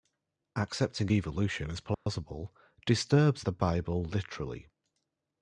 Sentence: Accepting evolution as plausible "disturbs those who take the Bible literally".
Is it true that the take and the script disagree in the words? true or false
true